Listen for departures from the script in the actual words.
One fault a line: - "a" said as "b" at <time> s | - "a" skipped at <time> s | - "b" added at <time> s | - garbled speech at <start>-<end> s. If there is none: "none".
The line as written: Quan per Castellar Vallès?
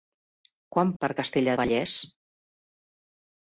none